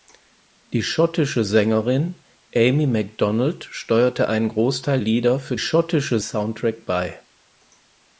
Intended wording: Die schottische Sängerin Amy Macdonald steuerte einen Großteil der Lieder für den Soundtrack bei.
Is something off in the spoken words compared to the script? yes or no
yes